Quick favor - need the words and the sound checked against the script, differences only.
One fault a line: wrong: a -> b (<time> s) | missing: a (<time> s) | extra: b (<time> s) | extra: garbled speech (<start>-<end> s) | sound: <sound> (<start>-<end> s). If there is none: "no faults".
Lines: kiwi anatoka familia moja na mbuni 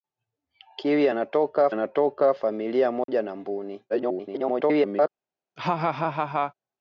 extra: anatoka (1.7 s)
sound: dropout (3.0-3.1 s)
extra: garbled speech (3.9-5.1 s)
sound: laugh (5.6-6.5 s)